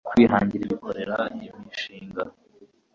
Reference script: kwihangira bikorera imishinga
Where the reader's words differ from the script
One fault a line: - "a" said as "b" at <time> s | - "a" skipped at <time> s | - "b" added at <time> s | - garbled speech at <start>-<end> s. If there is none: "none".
none